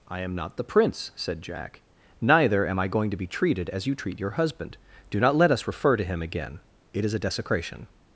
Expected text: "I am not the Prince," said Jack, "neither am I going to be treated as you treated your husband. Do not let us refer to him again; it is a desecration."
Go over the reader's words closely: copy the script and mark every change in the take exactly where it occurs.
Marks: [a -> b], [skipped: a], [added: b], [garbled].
"I am not the Prince," said Jack, "neither am I going to be treated as you [treated -> treat] your husband. Do not let us refer to him again; it is a desecration."